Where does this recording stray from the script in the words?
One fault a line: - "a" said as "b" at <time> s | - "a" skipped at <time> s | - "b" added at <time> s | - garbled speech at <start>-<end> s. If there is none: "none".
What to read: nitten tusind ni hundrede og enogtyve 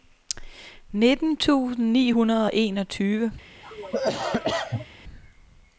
none